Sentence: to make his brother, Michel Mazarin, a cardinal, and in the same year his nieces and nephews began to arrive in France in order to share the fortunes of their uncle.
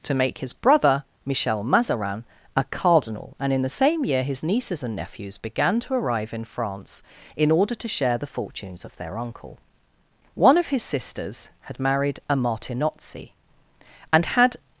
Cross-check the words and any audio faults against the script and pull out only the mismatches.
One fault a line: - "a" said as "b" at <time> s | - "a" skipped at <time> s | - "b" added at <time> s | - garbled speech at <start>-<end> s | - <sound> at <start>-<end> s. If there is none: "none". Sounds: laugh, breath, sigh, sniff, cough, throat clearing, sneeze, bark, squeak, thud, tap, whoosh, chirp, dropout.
- "One of his sisters had married a Martinozzi and had" added at 10.3 s